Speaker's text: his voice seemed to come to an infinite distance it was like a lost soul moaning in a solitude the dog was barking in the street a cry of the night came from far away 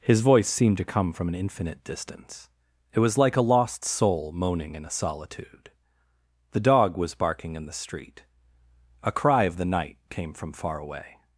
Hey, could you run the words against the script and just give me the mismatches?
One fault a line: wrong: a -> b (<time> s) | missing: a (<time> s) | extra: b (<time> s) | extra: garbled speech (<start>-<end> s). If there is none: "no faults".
wrong: to -> from (1.1 s)